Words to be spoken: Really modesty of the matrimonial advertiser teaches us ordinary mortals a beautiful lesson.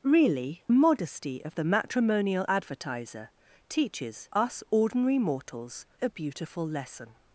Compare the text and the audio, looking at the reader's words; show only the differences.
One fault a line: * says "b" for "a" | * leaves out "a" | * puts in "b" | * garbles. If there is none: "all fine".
all fine